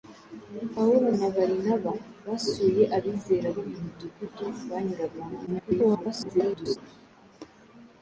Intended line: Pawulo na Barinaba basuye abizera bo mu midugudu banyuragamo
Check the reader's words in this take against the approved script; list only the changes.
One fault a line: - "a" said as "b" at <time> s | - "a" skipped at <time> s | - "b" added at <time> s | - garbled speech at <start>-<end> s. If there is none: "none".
- garbled speech at 5.5-6.8 s